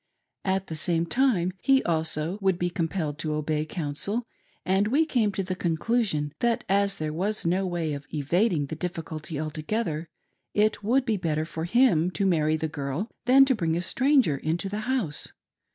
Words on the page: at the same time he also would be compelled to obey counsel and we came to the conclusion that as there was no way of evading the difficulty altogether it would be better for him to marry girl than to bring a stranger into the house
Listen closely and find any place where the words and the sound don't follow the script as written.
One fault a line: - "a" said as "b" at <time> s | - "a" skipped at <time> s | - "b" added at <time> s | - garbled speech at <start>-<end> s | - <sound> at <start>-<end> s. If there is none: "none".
- "the" added at 12.6 s